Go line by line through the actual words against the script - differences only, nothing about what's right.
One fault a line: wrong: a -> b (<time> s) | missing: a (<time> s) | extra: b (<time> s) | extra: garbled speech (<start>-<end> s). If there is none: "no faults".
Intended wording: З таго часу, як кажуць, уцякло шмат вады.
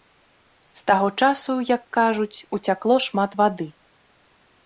no faults